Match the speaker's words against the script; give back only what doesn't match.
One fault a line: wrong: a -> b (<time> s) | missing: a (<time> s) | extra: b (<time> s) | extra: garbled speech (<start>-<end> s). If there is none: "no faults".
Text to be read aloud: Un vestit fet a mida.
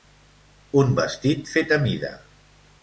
no faults